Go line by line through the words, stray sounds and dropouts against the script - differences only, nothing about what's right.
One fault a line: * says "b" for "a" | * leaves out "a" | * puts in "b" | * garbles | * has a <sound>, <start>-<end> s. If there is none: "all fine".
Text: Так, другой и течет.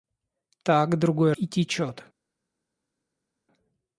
all fine